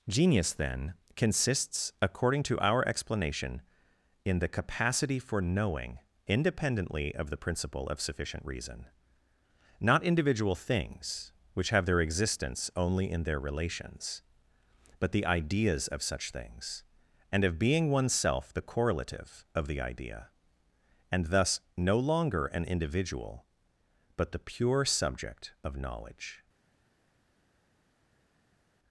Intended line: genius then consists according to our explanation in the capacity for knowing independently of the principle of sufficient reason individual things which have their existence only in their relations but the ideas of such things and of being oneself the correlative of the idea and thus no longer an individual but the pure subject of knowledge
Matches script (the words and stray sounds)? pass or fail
fail